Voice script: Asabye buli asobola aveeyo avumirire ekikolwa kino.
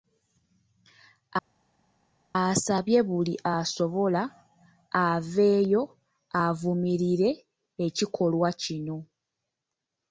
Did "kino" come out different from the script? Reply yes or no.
no